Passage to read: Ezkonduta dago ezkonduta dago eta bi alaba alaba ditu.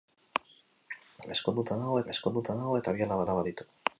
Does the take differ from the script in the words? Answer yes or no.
no